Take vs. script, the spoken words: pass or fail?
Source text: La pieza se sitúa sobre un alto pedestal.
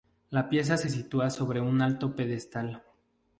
pass